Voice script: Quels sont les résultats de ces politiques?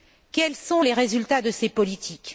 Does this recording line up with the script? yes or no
yes